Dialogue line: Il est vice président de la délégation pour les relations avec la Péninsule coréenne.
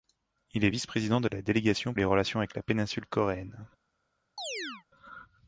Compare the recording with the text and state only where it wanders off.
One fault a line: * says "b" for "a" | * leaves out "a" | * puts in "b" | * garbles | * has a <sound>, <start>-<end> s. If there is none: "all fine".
* leaves out "pour"
* has a chirp, 4.4-4.8 s